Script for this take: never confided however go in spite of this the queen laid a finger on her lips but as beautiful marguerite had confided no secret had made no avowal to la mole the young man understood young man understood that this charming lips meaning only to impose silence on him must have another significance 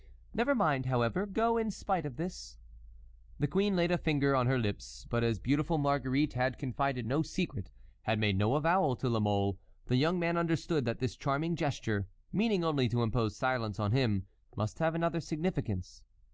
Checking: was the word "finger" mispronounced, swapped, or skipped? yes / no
no